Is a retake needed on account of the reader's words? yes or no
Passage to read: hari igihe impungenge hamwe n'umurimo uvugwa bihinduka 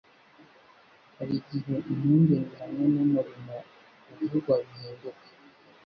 no